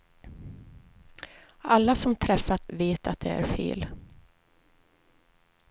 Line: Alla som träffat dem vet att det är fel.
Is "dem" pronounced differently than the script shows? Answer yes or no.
yes